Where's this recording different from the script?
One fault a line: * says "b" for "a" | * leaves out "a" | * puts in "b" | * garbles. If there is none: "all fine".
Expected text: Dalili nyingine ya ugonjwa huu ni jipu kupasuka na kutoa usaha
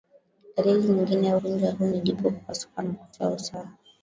all fine